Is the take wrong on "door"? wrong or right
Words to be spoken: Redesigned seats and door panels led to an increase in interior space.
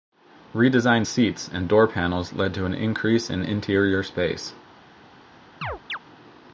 right